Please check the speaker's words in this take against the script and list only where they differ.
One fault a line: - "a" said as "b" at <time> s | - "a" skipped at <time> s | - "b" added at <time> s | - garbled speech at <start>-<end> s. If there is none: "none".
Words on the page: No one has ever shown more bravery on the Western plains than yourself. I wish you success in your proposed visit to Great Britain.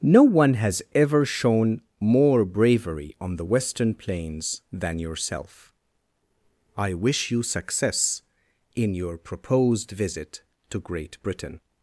none